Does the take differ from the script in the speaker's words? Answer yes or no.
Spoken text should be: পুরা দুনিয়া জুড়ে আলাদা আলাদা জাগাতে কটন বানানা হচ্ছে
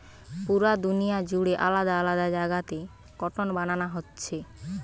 no